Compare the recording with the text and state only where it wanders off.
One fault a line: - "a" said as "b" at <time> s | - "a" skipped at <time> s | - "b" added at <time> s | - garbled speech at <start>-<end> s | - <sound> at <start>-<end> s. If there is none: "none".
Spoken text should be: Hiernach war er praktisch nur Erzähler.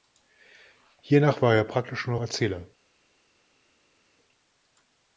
none